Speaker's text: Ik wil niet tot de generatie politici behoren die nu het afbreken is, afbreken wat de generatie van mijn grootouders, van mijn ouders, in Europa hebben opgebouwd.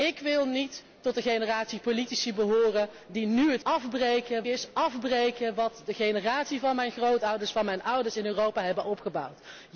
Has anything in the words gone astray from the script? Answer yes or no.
no